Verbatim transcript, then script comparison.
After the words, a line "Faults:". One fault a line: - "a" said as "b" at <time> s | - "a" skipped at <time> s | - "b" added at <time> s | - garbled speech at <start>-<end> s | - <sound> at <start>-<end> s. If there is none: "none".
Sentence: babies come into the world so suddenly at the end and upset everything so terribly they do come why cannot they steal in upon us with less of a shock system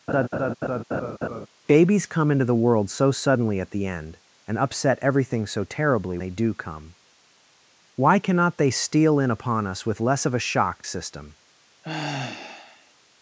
babies come into the world so suddenly at the end and upset everything so terribly they do come why cannot they steal in upon us with less of a shock system
Faults:
- laugh at 0.1-1.5 s
- sigh at 11.8-12.9 s